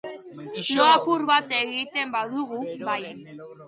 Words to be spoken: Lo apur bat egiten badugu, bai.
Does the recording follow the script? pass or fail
pass